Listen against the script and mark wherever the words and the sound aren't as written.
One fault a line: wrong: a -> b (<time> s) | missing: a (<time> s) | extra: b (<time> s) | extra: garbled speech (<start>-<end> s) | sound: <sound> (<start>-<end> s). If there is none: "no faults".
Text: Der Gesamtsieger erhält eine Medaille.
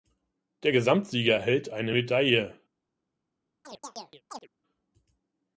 sound: chirp (3.6-4.5 s)